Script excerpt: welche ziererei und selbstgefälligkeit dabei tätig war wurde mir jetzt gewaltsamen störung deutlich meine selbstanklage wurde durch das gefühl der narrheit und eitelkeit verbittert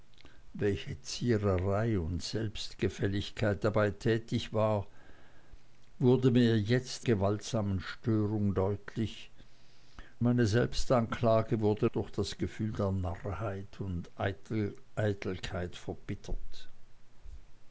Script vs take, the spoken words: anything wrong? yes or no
no